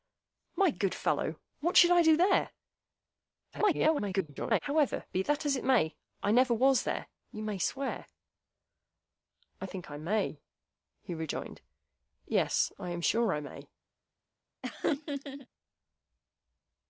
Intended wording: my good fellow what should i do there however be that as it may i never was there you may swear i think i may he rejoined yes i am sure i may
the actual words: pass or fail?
fail